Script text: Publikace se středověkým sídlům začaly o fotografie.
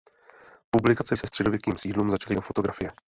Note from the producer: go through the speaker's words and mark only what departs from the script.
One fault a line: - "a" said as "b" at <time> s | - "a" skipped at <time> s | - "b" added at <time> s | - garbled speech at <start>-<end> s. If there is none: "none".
none